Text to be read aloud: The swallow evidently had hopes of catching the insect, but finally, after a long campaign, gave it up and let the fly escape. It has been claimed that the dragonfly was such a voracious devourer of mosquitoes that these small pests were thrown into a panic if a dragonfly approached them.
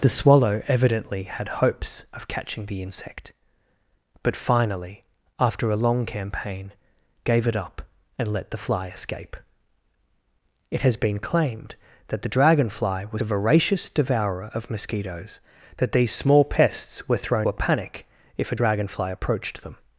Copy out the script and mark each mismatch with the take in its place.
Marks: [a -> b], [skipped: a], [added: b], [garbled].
The swallow evidently had hopes of catching the insect, but finally, after a long campaign, gave it up and let the fly escape. It has been claimed that the dragonfly was [skipped: such] a voracious devourer of mosquitoes that these small pests were thrown [skipped: into] a panic if a dragonfly approached them.